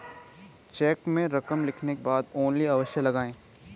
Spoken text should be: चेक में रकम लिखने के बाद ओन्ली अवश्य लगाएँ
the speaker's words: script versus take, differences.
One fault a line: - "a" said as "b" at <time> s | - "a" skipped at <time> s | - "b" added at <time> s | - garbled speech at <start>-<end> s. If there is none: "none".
- "के" skipped at 1.9 s